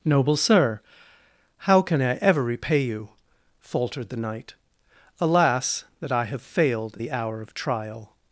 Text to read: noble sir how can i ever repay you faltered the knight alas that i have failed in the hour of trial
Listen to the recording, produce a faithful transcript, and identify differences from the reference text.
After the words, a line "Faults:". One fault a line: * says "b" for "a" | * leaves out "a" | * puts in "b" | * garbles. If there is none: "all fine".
noble sir how can i ever repay you faltered the knight alas that i have failed the hour of trial
Faults:
* leaves out "in"